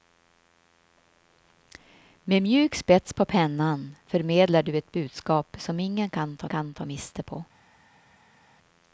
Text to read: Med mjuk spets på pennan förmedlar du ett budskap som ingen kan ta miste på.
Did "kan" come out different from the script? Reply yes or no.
no